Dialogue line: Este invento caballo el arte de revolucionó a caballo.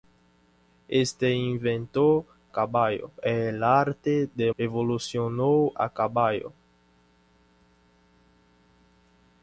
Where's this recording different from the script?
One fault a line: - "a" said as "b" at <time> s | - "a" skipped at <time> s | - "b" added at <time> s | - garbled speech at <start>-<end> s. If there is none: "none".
none